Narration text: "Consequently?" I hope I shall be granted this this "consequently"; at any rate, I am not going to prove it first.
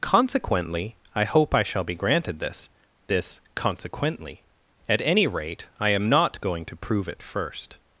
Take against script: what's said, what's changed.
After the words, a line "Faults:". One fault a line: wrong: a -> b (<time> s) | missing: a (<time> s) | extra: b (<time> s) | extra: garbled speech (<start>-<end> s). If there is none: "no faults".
"Consequently?" I hope I shall be granted this this "consequently"; at any rate, I am not going to prove it first.
Faults:
no faults